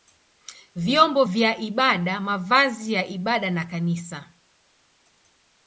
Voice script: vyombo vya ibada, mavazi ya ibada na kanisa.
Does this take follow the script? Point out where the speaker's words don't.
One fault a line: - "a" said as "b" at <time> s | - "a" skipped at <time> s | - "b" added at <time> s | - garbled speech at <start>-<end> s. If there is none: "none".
none